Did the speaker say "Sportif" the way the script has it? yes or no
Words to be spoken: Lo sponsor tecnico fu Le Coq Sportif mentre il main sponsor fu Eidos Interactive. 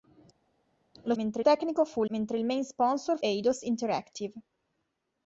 no